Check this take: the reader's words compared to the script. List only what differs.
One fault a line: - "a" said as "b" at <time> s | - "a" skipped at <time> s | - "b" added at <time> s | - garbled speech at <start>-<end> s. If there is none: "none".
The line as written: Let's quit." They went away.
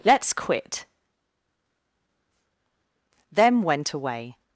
- "They" said as "Them" at 3.3 s